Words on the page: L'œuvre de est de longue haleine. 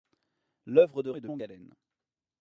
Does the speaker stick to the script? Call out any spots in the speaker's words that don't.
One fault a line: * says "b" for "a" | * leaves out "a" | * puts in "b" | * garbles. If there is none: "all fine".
all fine